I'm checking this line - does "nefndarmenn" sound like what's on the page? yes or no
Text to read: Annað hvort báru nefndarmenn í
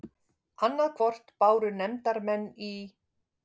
yes